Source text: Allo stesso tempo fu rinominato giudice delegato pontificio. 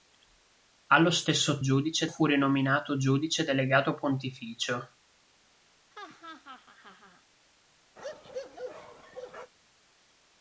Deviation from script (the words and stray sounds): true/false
true